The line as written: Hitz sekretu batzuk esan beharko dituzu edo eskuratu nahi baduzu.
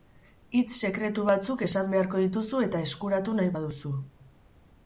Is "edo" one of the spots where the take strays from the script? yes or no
yes